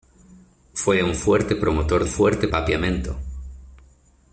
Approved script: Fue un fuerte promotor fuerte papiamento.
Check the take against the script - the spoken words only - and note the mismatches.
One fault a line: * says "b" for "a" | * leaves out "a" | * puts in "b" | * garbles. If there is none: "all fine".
all fine